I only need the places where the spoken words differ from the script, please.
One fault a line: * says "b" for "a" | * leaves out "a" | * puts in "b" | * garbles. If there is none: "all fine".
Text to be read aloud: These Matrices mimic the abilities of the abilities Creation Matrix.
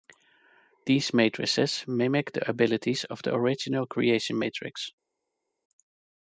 * says "original" for "abilities"